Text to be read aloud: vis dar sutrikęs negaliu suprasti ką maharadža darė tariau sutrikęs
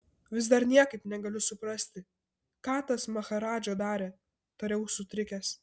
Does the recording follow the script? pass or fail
fail